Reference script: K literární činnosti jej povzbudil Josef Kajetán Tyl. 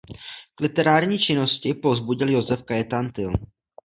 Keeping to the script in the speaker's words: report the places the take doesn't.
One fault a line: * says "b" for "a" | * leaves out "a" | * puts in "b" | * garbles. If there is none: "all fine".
all fine